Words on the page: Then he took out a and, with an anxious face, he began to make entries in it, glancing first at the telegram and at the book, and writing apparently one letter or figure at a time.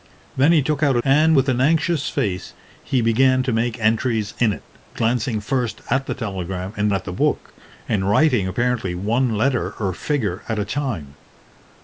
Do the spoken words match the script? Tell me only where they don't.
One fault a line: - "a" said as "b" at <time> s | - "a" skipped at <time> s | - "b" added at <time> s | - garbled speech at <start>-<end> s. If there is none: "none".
none